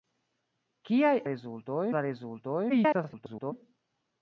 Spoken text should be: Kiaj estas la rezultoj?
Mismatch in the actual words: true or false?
true